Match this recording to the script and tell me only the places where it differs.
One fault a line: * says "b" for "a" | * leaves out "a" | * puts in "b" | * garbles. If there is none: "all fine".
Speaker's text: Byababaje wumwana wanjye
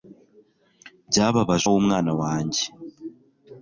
all fine